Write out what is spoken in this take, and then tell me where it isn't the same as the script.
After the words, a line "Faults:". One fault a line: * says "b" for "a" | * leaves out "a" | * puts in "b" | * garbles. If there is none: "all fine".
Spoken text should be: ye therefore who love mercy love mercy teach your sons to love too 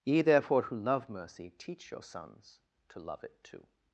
ye therefore who love mercy teach your sons to love it too
Faults:
* leaves out "love mercy"
* puts in "it"